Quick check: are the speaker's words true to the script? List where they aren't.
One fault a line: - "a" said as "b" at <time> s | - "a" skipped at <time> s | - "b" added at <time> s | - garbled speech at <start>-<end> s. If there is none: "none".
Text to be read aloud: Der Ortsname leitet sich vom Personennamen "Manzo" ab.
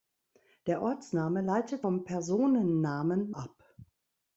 - "sich" skipped at 1.9 s
- "Manzo" skipped at 3.3 s